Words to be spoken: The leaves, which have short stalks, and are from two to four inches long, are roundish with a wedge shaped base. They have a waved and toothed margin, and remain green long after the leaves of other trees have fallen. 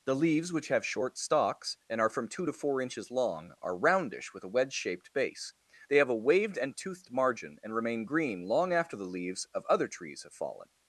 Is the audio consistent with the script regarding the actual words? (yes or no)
yes